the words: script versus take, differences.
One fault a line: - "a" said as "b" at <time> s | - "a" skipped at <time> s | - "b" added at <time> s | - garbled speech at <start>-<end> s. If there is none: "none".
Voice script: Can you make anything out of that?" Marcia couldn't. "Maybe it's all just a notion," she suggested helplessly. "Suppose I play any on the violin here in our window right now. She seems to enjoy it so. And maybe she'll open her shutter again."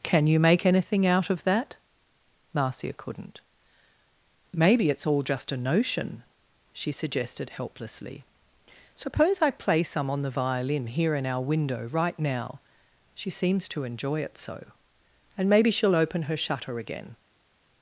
- "any" said as "some" at 9.8 s